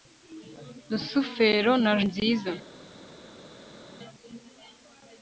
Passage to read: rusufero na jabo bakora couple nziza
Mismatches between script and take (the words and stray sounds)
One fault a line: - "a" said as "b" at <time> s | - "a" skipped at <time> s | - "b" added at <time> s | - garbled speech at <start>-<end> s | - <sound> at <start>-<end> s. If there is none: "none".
- "jabo bakora couple" skipped at 1.9 s